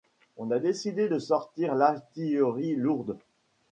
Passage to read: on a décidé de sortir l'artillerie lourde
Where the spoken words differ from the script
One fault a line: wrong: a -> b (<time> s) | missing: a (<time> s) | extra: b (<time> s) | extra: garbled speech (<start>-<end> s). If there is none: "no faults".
no faults